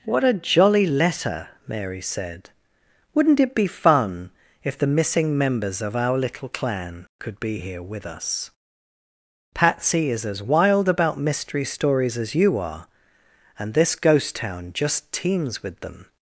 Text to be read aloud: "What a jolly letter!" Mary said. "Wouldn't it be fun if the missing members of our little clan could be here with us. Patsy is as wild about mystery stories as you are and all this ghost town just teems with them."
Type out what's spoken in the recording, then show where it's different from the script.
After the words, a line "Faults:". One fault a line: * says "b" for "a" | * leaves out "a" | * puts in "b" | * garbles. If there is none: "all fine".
"What a jolly letter!" Mary said. "Wouldn't it be fun if the missing members of our little clan could be here with us. Patsy is as wild about mystery stories as you are and this ghost town just teems with them."
Faults:
* leaves out "all"